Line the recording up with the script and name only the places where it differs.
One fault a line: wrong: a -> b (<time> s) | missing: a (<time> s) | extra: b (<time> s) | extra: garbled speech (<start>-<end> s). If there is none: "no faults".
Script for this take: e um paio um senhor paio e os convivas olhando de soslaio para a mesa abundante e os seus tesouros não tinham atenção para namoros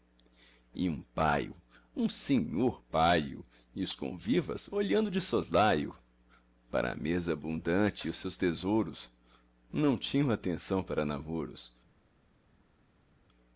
no faults